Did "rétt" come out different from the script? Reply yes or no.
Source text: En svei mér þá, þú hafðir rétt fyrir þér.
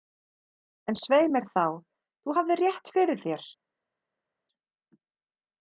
no